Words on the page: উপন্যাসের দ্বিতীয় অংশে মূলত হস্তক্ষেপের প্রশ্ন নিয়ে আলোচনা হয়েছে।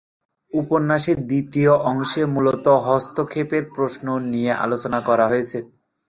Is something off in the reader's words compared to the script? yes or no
yes